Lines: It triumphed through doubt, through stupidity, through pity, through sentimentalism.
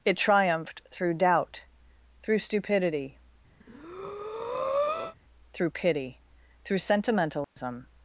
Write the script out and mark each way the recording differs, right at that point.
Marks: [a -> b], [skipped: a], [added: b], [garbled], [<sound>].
It triumphed through doubt, through stupidity, [breath] through pity, through sentimentalism. [dropout]